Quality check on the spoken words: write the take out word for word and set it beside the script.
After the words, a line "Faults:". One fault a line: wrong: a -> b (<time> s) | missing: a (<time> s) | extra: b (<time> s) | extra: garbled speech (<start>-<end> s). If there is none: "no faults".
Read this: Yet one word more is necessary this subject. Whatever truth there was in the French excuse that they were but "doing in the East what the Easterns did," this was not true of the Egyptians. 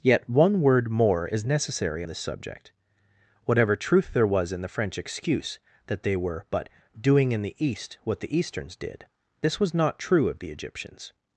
Yet one word more is necessary this subject. Whatever truth there was in the French excuse that they were but "doing in the East what the Easterns did," this was not true of the Egyptians.
Faults:
no faults